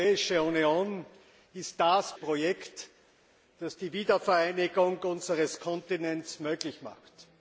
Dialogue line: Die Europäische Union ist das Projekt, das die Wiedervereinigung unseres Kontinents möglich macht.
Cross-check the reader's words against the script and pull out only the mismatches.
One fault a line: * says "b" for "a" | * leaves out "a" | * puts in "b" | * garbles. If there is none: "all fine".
all fine